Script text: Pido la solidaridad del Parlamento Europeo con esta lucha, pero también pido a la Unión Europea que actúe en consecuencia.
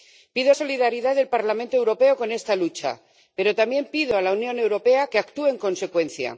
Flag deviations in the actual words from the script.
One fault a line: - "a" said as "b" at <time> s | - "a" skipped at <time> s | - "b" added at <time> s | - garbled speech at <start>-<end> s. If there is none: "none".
- "la" skipped at 0.5 s